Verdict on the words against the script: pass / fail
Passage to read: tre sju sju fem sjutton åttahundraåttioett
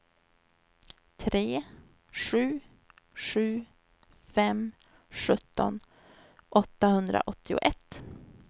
pass